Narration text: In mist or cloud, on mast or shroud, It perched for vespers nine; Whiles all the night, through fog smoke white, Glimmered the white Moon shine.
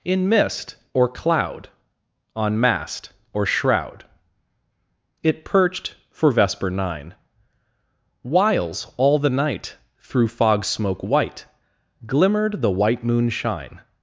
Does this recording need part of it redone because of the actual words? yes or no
yes